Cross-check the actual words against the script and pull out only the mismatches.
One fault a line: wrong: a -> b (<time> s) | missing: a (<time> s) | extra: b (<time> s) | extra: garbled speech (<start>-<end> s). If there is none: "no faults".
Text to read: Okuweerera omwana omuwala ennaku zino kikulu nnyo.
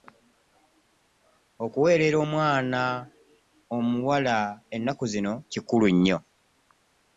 no faults